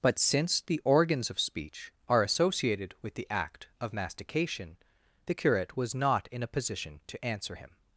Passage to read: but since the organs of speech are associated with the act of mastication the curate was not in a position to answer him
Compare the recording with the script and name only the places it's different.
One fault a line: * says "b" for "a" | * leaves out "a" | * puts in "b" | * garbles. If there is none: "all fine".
all fine